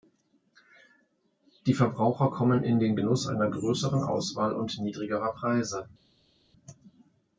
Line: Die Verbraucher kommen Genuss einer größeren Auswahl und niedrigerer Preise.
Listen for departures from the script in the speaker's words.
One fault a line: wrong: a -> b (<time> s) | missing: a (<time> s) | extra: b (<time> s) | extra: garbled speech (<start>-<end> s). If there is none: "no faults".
extra: in den (2.6 s)